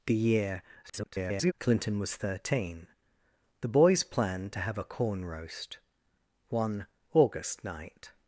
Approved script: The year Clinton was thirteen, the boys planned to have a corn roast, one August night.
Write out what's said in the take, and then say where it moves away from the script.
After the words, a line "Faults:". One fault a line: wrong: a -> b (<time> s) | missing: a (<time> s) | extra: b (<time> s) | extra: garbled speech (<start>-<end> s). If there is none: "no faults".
The year [garbled] Clinton was thirteen, the boys planned to have a corn roast, one August night.
Faults:
extra: garbled speech (0.8-1.5 s)